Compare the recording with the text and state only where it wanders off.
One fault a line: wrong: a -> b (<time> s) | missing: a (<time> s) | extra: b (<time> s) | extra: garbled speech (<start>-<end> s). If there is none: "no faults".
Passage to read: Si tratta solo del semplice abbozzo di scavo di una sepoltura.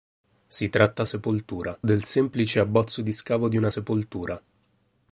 wrong: solo -> sepoltura (1.0 s)